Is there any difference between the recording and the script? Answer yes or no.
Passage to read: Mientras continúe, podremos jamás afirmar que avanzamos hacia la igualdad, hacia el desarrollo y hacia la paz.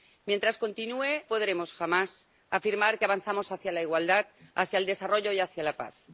no